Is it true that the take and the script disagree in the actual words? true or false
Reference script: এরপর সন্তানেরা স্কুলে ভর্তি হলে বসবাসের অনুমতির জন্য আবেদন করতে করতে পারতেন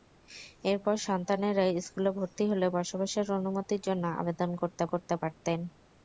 false